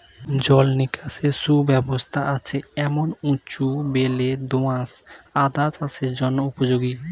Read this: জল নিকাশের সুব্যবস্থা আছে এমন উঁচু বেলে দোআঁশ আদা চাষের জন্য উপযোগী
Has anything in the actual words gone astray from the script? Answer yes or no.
no